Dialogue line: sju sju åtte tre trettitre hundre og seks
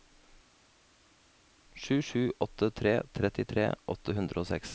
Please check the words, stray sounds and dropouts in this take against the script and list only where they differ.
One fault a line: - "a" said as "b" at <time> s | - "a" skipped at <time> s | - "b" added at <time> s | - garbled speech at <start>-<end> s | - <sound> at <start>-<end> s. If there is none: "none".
- "åtte" added at 3.9 s